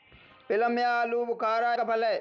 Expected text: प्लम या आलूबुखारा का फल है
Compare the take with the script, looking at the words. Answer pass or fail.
pass